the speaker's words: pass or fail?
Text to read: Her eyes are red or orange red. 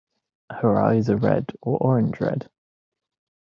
pass